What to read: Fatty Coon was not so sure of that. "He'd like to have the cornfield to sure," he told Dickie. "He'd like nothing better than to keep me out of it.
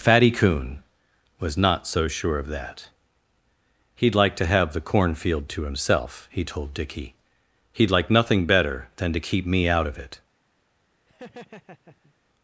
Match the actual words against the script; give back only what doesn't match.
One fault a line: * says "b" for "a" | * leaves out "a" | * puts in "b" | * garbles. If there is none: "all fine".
* says "himself" for "sure"